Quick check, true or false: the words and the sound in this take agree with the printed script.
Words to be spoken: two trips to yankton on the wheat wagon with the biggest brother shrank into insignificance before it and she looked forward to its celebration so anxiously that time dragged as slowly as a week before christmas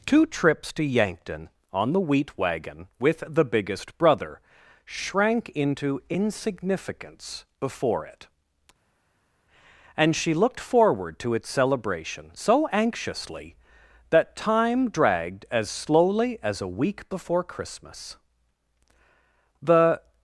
false